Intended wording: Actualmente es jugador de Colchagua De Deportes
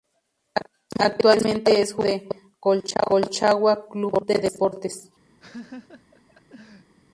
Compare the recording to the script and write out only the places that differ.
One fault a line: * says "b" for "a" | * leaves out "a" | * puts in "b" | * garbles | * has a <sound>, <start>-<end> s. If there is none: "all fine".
* puts in "Club"
* has a laugh, 5.4-6.9 s